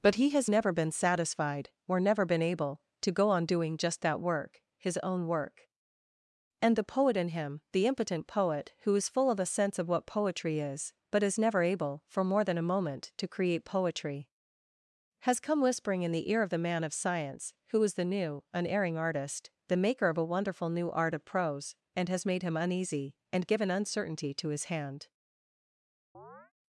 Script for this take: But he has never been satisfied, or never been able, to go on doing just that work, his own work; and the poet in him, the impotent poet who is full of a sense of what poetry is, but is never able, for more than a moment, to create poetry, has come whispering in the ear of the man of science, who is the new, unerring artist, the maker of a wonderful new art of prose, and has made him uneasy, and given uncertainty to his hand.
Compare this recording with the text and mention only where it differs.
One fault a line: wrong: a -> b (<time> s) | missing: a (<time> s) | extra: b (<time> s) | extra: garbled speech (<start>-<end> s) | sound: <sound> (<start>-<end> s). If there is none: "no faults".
sound: chirp (26.1-26.5 s)